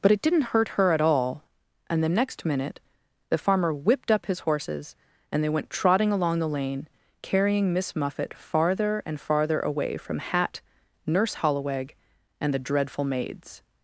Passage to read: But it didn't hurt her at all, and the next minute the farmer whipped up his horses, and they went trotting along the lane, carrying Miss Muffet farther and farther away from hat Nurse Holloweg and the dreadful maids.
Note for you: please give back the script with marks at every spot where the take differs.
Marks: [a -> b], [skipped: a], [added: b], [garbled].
But it didn't hurt her at all, and the next minute the farmer whipped up his horses, and they went trotting along the lane, carrying Miss Muffet farther and farther away from hat Nurse Holloweg and the dreadful maids.